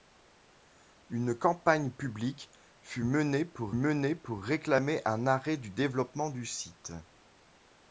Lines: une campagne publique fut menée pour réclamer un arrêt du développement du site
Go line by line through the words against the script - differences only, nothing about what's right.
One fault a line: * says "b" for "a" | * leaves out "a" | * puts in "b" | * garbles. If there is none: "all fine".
* puts in "menée pour"